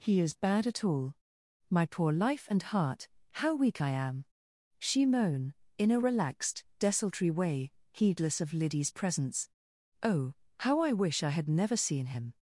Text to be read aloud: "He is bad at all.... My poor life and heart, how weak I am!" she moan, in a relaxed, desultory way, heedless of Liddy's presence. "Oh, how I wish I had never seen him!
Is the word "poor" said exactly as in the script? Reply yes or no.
yes